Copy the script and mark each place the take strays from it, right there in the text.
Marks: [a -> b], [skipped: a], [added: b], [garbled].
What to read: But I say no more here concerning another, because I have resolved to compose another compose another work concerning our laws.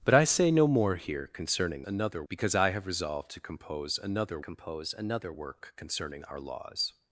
But I say no more here concerning another, because I have resolved to compose another compose another work concerning our laws.